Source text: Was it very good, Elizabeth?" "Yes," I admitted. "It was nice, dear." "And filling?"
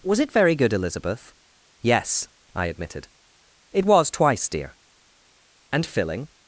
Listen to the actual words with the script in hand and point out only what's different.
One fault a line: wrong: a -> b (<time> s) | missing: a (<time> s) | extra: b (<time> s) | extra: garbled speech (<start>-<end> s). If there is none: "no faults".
wrong: nice -> twice (4.1 s)